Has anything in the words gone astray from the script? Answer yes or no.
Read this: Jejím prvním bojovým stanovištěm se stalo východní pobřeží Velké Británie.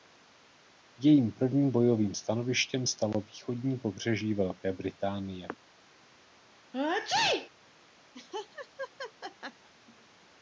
yes